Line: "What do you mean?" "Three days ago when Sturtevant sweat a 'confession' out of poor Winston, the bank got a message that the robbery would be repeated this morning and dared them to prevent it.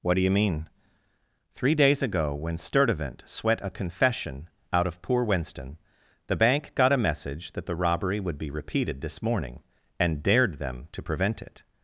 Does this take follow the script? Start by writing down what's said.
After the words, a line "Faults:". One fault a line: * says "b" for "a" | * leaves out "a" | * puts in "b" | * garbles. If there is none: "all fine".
"What do you mean?" "Three days ago when Sturtevant sweat a 'confession' out of poor Winston, the bank got a message that the robbery would be repeated this morning and dared them to prevent it.
Faults:
all fine